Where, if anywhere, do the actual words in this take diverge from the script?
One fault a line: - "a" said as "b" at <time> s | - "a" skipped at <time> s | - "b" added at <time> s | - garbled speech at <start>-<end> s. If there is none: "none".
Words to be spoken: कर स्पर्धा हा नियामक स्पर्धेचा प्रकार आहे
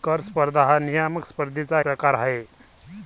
none